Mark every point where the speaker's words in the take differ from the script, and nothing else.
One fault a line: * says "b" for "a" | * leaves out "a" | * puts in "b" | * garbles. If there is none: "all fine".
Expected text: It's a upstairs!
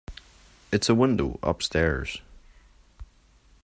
* puts in "window"